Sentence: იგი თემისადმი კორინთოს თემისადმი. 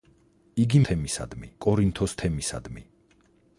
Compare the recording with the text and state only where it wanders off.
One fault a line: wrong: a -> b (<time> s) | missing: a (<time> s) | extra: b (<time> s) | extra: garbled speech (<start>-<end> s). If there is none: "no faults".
no faults